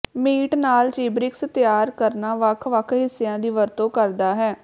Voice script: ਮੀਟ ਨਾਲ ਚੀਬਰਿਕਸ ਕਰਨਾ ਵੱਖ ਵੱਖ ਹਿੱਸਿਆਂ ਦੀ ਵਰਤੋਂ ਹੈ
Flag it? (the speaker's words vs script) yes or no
yes